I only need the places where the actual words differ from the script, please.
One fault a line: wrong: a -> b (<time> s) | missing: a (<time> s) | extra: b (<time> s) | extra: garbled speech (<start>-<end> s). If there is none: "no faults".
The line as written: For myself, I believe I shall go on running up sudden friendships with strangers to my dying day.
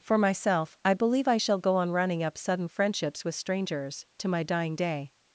no faults